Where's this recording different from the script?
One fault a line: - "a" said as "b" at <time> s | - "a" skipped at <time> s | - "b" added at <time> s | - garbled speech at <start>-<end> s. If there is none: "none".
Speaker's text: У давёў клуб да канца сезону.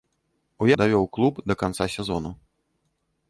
none